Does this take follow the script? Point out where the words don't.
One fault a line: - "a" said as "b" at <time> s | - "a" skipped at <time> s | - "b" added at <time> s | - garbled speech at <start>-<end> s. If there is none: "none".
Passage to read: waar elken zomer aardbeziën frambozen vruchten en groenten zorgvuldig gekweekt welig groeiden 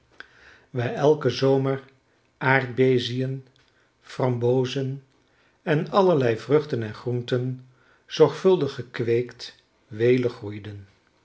- "en allerlei" added at 5.6 s